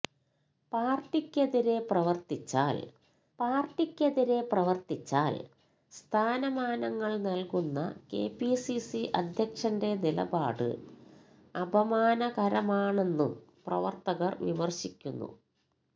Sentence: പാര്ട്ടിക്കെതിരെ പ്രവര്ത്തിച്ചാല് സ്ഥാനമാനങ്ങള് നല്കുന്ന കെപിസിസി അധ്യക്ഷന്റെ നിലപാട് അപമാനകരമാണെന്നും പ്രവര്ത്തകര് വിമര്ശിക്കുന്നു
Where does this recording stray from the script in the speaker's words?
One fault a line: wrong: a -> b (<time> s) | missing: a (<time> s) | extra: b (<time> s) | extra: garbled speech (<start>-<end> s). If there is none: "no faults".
extra: പാര്ട്ടിക്കെതിരെ പ്രവര്ത്തിച്ചാല് (3.4 s)